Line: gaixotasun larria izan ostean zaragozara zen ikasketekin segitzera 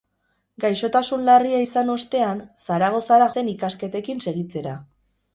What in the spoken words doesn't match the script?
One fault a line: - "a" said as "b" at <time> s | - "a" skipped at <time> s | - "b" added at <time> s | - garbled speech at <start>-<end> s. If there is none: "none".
none